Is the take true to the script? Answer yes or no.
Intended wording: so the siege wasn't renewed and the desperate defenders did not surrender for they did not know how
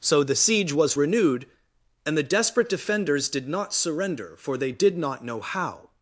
no